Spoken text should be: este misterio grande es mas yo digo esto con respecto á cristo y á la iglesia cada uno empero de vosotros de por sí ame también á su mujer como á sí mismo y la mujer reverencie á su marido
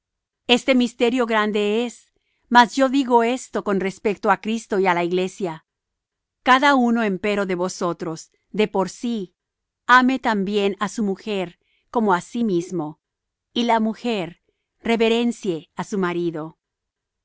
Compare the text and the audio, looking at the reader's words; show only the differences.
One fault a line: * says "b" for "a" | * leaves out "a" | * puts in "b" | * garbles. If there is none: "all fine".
all fine